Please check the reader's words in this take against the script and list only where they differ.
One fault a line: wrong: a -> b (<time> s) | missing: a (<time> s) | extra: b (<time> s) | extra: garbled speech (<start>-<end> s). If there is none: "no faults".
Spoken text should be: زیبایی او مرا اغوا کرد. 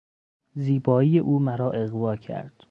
no faults